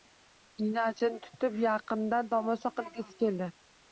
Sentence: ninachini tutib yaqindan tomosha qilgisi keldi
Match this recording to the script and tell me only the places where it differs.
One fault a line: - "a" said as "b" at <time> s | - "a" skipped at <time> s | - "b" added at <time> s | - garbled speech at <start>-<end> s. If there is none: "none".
none